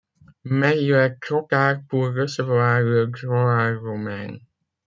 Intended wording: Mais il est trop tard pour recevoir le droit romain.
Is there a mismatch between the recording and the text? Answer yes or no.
no